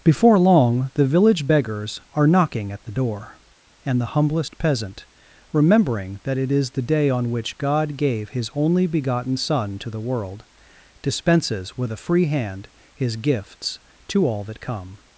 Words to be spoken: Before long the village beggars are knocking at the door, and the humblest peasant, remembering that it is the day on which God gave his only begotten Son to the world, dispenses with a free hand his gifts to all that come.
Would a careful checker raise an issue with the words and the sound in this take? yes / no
no